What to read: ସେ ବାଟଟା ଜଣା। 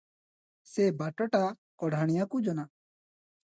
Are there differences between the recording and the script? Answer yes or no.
yes